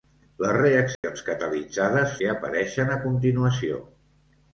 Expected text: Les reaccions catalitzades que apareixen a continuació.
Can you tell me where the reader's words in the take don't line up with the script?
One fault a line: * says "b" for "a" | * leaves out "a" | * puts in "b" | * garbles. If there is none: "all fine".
all fine